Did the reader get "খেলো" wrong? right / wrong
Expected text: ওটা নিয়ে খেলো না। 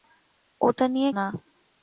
wrong